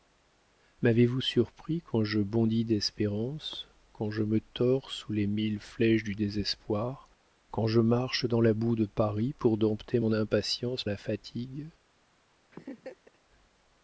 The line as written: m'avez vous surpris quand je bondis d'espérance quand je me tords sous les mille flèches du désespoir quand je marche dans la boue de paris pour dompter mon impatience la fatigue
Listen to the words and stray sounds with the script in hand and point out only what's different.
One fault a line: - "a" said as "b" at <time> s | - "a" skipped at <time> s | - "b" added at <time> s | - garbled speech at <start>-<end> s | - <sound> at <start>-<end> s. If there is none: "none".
- laugh at 12.5-13.2 s